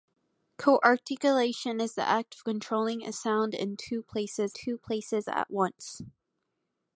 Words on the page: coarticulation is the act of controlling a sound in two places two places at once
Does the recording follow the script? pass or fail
pass